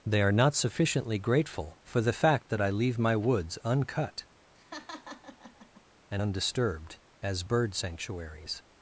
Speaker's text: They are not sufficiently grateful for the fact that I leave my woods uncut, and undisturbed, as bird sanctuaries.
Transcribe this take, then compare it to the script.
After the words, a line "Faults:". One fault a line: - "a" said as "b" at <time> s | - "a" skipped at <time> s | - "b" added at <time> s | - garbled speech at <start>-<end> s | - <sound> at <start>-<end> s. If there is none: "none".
They are not sufficiently grateful for the fact that I leave my woods uncut, and undisturbed, as bird sanctuaries.
Faults:
- laugh at 4.5-5.8 s